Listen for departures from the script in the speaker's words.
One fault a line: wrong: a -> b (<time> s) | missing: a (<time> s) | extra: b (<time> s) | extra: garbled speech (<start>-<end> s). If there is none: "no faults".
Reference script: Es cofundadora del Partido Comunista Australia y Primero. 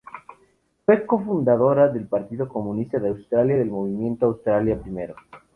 wrong: Es -> Fue (0.8 s)
extra: de (3.0 s)
extra: del Movimiento Australia (3.6 s)